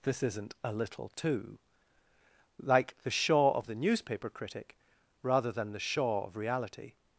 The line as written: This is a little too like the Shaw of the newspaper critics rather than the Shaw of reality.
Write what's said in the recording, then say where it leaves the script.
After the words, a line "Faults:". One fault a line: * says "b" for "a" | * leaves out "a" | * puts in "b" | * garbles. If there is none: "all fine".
This isn't a little too like the Shaw of the newspaper critic rather than the Shaw of reality.
Faults:
* says "isn't" for "is"
* says "critic" for "critics"